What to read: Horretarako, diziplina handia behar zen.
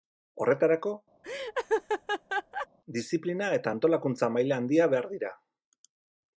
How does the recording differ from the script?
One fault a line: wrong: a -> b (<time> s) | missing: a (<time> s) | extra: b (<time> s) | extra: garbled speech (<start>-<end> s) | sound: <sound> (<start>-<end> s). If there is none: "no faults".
sound: laugh (1.2-2.7 s)
extra: eta antolakuntza maila (3.6 s)
wrong: zen -> dira (5.2 s)